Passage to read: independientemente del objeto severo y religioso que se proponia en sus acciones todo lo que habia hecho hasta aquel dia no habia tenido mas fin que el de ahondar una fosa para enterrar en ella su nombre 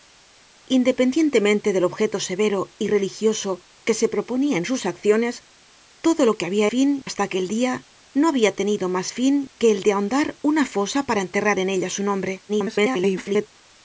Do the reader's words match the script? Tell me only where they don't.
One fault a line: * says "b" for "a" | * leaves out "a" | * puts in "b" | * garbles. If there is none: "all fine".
* says "fin" for "hecho"
* garbles